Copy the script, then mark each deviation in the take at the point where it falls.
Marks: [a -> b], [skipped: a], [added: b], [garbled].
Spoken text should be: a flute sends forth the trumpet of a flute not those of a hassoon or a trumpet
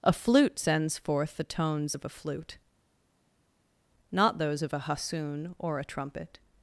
a flute sends forth the [trumpet -> tones] of a flute not those of a hassoon or a trumpet